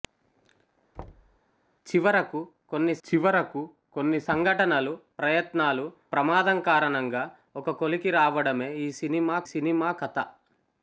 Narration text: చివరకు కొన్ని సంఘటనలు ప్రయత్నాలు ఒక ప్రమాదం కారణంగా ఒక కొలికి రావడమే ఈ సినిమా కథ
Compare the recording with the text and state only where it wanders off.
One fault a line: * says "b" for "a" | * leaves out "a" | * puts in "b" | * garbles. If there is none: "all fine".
* puts in "చివరకు కొన్ని"
* leaves out "ఒక"
* puts in "సినిమా"